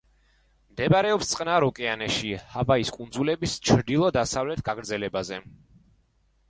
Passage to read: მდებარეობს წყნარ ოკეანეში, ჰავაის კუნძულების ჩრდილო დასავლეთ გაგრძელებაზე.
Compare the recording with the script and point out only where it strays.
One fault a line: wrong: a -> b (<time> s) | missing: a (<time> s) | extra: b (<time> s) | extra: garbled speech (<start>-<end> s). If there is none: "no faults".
no faults